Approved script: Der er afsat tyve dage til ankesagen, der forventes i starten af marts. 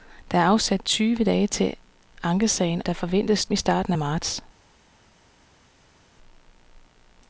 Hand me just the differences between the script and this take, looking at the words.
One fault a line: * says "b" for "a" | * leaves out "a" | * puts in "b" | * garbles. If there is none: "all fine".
all fine